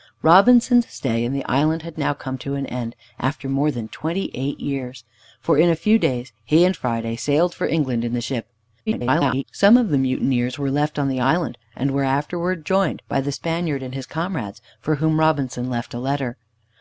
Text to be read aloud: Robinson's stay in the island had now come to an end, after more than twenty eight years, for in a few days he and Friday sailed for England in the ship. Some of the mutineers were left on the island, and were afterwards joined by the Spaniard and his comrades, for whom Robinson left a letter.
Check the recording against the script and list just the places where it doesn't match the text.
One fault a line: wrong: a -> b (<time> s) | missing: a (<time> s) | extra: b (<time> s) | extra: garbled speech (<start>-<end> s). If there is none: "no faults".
extra: garbled speech (8.9-9.4 s)